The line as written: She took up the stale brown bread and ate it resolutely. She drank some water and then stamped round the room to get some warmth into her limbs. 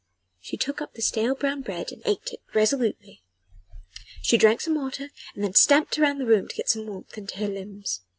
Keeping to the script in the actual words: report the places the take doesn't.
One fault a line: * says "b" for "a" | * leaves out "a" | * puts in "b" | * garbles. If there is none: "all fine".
all fine